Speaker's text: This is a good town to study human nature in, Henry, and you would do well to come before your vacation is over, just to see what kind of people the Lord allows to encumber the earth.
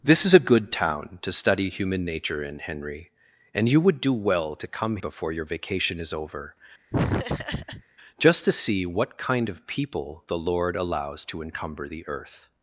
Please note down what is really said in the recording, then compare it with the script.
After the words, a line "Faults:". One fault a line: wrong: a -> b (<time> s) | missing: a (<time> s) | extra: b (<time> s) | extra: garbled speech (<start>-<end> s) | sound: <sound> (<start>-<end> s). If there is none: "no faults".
This is a good town to study human nature in, Henry, and you would do well to come before your vacation is over, just to see what kind of people the Lord allows to encumber the earth.
Faults:
sound: laugh (6.9-7.8 s)